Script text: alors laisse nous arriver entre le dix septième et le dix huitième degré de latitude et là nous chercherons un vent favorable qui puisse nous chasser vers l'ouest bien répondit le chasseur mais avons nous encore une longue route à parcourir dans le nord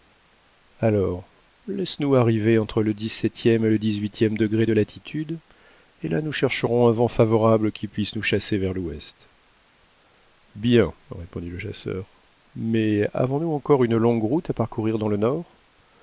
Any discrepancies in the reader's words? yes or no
no